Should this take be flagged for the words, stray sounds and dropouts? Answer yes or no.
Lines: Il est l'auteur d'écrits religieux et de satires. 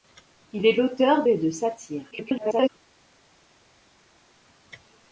yes